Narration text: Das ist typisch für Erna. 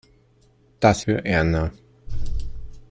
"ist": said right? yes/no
no